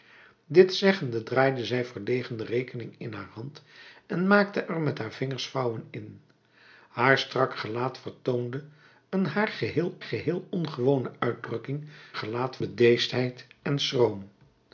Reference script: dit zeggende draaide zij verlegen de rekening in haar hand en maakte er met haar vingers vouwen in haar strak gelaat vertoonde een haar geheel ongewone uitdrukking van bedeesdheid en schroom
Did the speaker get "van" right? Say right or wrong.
wrong